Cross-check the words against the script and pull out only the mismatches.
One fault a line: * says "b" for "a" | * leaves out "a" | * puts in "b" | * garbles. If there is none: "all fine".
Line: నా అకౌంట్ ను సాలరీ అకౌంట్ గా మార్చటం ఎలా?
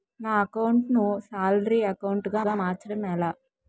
* puts in "గా"